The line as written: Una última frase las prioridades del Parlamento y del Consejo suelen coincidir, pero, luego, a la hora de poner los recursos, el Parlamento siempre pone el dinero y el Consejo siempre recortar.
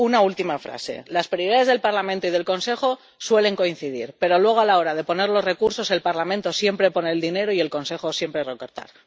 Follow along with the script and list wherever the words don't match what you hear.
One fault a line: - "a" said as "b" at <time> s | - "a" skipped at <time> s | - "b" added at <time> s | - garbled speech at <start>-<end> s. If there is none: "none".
none